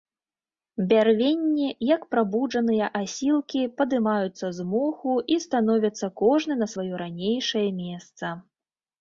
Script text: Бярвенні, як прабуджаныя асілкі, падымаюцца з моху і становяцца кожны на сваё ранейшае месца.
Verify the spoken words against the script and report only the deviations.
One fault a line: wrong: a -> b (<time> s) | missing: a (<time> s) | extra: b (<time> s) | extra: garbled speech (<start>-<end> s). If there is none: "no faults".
no faults